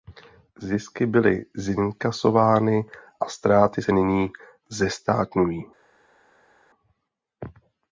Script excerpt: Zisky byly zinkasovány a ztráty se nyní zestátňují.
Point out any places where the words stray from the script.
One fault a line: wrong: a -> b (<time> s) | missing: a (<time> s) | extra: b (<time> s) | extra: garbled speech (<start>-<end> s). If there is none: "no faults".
no faults